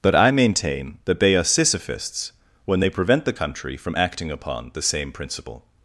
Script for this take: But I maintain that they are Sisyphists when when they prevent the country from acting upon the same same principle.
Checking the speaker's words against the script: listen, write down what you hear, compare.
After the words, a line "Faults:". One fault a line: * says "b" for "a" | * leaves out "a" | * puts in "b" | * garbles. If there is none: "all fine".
But I maintain that they are Sisyphists when they prevent the country from acting upon the same principle.
Faults:
* leaves out "when"
* leaves out "same"